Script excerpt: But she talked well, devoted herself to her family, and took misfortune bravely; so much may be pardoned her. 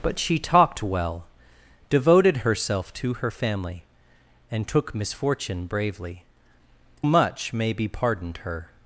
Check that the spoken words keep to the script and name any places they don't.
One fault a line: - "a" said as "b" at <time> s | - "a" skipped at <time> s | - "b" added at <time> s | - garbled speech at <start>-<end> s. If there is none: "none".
- "so" skipped at 6.2 s